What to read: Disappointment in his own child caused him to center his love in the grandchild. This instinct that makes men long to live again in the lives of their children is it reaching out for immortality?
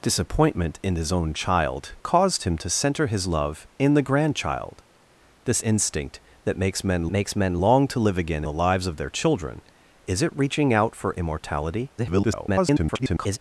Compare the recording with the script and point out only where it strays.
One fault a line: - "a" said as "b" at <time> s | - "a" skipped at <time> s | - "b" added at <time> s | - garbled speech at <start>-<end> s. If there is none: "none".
- "makes men" added at 7.1 s
- "in" skipped at 8.4 s
- garbled speech at 12.0-13.4 s